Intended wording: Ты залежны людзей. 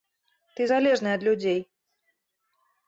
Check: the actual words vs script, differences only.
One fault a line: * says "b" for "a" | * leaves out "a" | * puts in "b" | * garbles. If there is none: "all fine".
* puts in "ад"